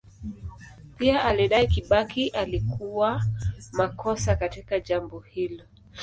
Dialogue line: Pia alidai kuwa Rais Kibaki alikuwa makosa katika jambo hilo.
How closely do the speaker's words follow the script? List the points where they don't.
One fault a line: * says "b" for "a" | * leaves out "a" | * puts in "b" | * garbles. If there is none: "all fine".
* leaves out "kuwa Rais"